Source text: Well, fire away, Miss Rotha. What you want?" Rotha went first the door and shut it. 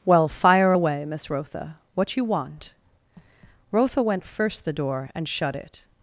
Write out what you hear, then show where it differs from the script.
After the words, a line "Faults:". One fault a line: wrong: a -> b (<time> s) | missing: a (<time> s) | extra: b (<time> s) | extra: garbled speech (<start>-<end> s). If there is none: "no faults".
Well, fire away, Miss Rotha. What you want?" Rotha went first the door and shut it.
Faults:
no faults